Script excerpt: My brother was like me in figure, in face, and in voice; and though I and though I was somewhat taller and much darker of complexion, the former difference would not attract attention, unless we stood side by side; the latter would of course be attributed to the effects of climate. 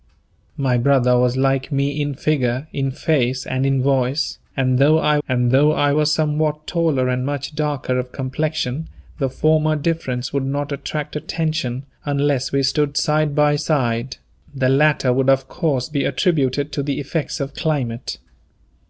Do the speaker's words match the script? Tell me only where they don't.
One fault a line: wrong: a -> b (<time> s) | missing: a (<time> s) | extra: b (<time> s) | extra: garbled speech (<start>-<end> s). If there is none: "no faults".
no faults